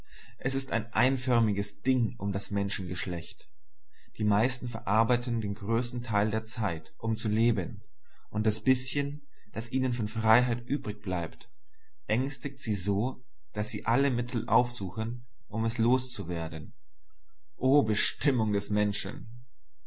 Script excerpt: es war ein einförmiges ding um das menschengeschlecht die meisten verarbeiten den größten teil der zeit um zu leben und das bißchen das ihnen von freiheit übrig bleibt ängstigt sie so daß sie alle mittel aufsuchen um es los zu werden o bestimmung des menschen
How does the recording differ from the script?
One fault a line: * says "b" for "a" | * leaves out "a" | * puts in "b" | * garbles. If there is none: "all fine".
* says "ist" for "war"